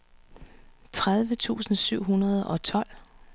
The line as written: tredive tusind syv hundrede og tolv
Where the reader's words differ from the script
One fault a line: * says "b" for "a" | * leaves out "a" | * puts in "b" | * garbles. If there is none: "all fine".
all fine